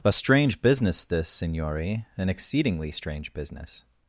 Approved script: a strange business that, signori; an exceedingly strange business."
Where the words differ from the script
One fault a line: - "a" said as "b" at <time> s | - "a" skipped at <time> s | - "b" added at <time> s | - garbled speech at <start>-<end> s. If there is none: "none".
- "that" said as "this" at 1.0 s